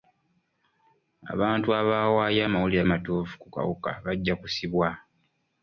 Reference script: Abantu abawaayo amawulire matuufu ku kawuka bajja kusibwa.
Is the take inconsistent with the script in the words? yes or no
no